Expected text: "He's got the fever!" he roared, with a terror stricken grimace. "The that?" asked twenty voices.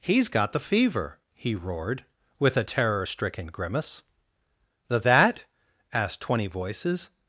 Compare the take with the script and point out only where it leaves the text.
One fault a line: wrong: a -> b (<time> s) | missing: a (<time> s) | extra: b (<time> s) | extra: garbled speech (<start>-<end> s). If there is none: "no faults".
no faults